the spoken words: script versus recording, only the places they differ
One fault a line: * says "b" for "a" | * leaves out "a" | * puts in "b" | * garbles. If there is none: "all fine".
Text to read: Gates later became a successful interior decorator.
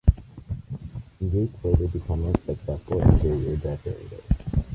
all fine